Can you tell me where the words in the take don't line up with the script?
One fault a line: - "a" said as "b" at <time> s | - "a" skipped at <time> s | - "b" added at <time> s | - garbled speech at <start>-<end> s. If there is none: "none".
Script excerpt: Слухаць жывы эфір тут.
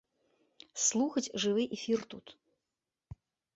none